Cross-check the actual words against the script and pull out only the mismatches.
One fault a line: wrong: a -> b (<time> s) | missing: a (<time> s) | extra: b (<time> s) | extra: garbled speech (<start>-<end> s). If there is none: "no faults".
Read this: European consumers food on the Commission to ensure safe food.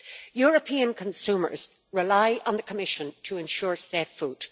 wrong: food -> rely (1.9 s)